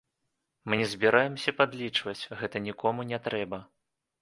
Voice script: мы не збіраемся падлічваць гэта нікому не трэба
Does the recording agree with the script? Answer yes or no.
yes